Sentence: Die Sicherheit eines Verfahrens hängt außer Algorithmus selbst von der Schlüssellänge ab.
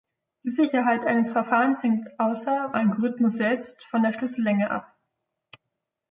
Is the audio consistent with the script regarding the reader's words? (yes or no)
yes